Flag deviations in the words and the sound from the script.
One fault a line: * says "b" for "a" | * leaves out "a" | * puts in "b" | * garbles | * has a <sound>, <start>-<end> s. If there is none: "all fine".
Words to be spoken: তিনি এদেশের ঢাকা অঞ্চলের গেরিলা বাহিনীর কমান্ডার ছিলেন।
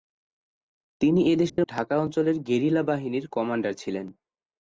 * has a dropout, 1.5-1.6 s